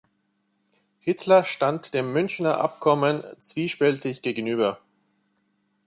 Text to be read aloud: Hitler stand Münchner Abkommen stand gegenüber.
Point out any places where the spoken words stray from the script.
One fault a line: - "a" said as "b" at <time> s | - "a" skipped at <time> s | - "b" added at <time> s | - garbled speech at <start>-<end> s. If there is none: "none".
- "dem" added at 1.9 s
- "stand" said as "zwiespältig" at 3.4 s